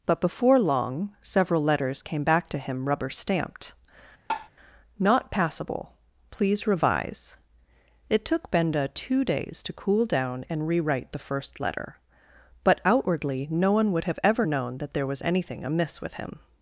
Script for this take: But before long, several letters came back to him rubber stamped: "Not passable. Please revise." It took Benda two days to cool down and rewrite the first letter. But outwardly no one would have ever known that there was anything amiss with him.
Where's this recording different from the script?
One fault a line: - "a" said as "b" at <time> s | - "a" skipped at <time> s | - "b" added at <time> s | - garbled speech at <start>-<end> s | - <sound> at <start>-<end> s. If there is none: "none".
- tap at 4.3-4.5 s